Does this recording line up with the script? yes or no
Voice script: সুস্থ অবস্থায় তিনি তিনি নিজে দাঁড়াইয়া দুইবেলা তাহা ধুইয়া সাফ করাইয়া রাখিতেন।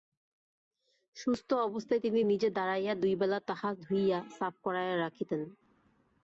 no